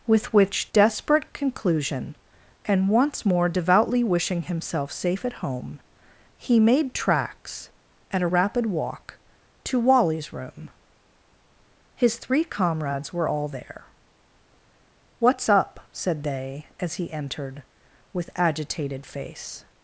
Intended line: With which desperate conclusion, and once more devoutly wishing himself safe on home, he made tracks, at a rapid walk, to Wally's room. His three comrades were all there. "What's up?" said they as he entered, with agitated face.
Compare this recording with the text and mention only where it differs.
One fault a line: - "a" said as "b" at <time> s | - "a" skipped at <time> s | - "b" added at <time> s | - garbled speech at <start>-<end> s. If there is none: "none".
- "on" said as "at" at 5.2 s